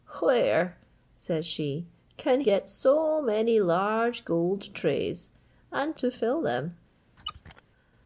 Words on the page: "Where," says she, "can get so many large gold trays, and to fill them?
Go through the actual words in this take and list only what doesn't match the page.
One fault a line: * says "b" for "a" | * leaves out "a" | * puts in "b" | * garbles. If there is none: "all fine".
all fine